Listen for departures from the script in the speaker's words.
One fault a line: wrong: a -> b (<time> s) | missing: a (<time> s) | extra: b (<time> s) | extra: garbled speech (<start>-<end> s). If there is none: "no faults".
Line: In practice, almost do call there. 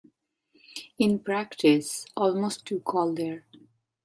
no faults